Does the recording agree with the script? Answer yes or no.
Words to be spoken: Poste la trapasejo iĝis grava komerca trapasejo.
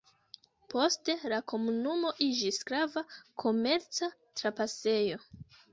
no